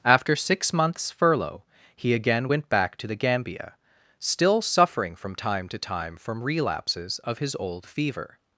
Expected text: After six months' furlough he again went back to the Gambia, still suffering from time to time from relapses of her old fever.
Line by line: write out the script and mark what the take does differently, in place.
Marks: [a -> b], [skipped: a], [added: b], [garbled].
After six months' furlough he again went back to the Gambia, still suffering from time to time from relapses of [her -> his] old fever.